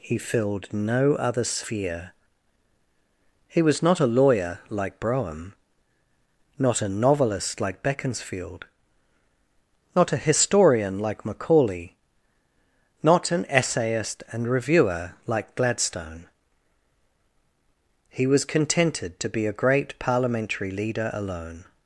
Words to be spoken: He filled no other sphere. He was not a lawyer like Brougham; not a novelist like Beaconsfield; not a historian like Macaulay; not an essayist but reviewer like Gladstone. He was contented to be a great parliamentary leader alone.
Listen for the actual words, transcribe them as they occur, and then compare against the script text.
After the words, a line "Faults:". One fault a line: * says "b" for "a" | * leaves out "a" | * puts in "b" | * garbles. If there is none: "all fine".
He filled no other sphere. He was not a lawyer like Brougham; not a novelist like Beaconsfield; not a historian like Macaulay; not an essayist and reviewer like Gladstone. He was contented to be a great parliamentary leader alone.
Faults:
* says "and" for "but"